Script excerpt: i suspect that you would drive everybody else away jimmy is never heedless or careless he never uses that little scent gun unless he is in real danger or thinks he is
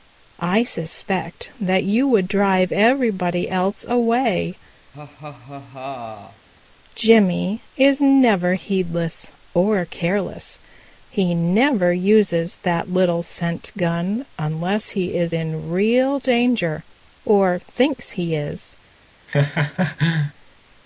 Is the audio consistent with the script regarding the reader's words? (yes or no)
yes